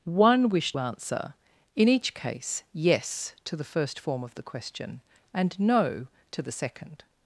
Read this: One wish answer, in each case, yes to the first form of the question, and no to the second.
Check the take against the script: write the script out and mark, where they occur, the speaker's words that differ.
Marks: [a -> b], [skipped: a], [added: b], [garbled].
One wish answer, in each case, yes to the first form of the question, and no to the second.